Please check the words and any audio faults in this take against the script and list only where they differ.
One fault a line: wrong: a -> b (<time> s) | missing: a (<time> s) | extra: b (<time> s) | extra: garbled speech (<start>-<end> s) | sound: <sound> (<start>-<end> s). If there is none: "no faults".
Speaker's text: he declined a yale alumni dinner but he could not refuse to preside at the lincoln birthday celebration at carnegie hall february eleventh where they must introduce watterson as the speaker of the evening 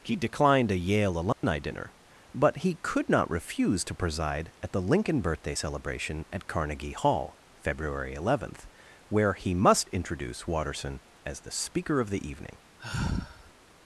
sound: dropout (1.3-1.4 s)
wrong: they -> he (9.3 s)
sound: sigh (12.8-13.5 s)